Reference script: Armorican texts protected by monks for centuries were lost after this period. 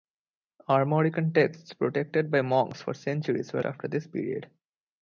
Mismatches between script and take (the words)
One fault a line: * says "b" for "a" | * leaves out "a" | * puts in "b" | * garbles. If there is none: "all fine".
* leaves out "lost"